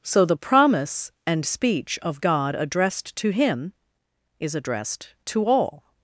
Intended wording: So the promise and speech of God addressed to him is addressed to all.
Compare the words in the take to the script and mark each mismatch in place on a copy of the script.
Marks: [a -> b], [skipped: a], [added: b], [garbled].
So the promise and speech of God addressed to him is addressed to all.